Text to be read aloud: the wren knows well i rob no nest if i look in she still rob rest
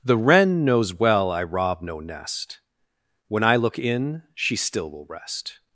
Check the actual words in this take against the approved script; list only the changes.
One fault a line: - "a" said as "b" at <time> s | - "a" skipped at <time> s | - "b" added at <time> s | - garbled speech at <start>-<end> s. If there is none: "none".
- "if" said as "when" at 3.3 s
- "rob" said as "will" at 4.9 s